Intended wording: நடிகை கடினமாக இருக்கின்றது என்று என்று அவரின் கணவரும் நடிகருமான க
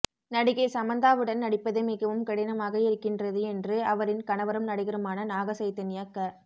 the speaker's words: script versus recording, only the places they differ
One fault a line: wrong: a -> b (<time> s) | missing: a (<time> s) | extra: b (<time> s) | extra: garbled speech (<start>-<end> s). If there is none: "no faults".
extra: சமந்தாவுடன் நடிப்பது மிகவும் (0.7 s)
missing: என்று (3.8 s)
extra: நாக சைதன்யா (5.3 s)